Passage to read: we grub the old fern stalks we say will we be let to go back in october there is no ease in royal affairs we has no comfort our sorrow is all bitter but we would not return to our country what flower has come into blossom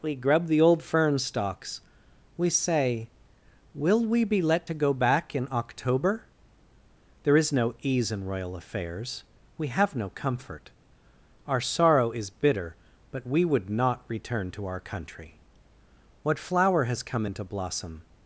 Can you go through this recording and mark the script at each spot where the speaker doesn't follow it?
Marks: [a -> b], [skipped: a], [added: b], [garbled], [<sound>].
we grub the old fern stalks we say will we be let to go back in october there is no ease in royal affairs we [has -> have] no comfort our sorrow is [skipped: all] bitter but we would not return to our country what flower has come into blossom